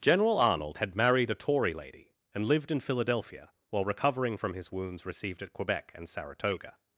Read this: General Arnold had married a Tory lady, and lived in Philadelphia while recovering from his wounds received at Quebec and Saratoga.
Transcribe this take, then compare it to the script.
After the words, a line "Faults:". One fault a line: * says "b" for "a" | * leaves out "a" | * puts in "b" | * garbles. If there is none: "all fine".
General Arnold had married a Tory lady, and lived in Philadelphia while recovering from his wounds received at Quebec and Saratoga.
Faults:
all fine